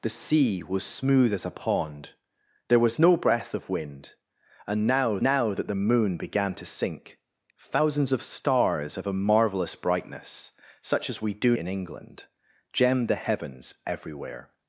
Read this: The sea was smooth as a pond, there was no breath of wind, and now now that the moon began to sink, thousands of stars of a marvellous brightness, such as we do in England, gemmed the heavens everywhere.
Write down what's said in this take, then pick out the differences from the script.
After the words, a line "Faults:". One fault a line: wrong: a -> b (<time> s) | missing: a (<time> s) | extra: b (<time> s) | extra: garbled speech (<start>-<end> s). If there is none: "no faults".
The sea was smooth as a pond, there was no breath of wind, and now now that the moon began to sink, thousands of stars of a marvellous brightness, such as we do in England, gemmed the heavens everywhere.
Faults:
no faults